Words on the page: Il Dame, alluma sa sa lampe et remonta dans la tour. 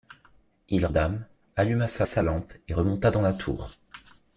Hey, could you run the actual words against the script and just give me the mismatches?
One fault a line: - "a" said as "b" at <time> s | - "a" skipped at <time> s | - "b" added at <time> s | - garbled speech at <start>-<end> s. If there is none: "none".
none